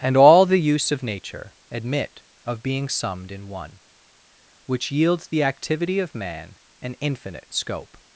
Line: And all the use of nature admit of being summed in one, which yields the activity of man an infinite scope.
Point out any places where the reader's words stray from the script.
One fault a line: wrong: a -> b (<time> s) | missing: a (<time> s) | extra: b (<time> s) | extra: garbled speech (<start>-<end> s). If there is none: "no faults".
no faults